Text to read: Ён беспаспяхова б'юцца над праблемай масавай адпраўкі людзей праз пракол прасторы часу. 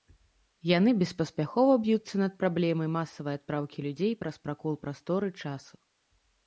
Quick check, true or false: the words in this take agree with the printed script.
false